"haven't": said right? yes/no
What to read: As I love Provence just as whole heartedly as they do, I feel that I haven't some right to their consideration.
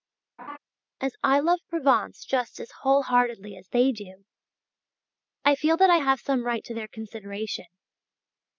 no